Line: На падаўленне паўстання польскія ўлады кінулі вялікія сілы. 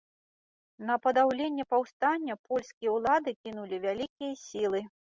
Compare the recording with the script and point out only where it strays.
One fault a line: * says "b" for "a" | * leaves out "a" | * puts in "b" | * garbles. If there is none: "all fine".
all fine